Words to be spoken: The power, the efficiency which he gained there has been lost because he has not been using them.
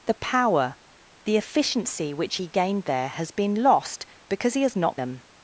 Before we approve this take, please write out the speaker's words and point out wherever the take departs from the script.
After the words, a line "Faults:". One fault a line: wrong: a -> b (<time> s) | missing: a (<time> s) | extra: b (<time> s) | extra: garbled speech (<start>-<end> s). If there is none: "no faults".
The power, the efficiency which he gained there has been lost because he has not them.
Faults:
missing: been using (5.0 s)